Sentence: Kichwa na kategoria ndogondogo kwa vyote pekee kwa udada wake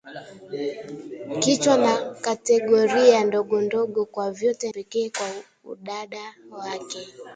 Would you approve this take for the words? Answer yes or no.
yes